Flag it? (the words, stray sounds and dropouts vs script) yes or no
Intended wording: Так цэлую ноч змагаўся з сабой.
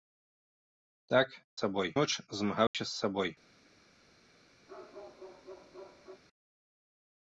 yes